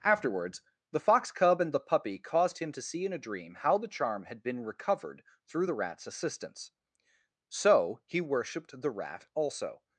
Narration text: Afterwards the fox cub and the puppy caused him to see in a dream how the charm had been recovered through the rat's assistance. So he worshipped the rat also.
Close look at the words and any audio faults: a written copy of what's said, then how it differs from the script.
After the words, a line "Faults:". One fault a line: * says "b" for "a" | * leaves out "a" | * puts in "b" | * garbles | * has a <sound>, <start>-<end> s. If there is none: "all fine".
Afterwards the fox cub and the puppy caused him to see in a dream how the charm had been recovered through the rat's assistance. So he worshipped the rat also.
Faults:
all fine